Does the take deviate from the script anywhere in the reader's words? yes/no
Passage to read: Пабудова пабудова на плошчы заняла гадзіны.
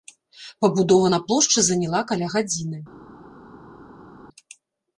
yes